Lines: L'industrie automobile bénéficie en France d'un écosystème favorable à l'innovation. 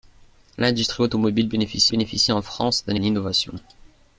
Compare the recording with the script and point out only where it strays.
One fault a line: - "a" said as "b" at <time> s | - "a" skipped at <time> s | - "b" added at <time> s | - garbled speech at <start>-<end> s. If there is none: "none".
- "bénéficie" added at 1.9 s
- "écosystème favorable" skipped at 2.9 s